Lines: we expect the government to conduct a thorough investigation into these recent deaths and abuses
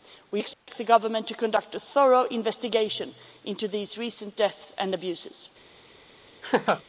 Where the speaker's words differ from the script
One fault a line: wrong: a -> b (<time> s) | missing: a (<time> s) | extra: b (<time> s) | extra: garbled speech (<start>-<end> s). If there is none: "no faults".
no faults